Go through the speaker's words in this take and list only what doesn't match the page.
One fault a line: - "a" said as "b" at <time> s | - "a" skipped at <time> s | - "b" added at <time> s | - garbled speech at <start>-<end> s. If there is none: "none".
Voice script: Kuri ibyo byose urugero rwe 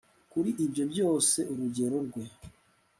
none